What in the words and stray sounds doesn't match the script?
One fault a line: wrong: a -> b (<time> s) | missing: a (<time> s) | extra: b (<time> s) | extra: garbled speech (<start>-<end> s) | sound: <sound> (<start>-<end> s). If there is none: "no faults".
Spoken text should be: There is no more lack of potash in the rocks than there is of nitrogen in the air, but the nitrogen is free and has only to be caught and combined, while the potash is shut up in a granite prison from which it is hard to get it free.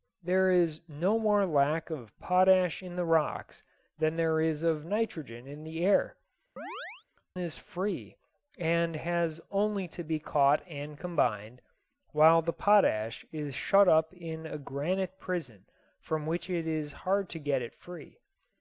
missing: but the nitrogen (6.2 s)
sound: chirp (6.6-7.1 s)